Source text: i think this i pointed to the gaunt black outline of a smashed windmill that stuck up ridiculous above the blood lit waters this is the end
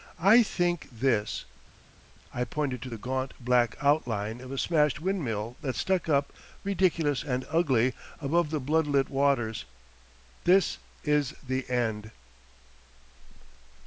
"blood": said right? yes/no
yes